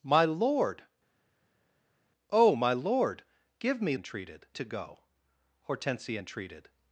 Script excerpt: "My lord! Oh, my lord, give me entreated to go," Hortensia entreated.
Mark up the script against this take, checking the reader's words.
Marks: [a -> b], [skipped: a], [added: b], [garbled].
"My lord! Oh, my lord, give me entreated to go," Hortensia entreated.